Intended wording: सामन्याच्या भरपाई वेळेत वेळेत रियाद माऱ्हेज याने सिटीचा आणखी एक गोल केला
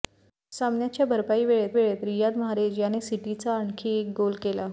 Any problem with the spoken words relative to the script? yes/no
no